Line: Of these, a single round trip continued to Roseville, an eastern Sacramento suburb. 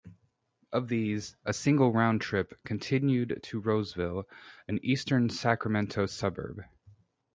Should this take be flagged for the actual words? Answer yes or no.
no